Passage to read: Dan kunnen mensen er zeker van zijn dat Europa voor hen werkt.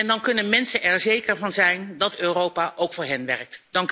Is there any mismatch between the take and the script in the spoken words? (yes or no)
yes